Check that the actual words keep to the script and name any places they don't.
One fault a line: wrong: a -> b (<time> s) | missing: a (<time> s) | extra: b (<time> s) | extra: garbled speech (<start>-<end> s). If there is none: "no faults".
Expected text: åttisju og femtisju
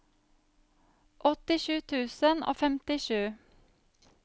extra: tusen (1.9 s)